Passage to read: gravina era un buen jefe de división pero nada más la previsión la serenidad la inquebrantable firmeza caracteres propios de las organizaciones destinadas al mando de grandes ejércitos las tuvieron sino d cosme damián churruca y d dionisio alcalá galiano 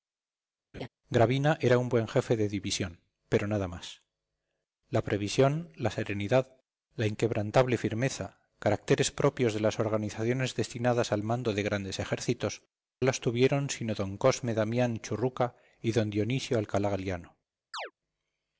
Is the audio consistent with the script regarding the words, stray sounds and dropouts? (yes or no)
no